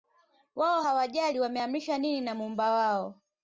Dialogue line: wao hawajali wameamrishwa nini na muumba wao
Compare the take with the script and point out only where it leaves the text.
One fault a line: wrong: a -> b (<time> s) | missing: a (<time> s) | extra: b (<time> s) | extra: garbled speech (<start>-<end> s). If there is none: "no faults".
no faults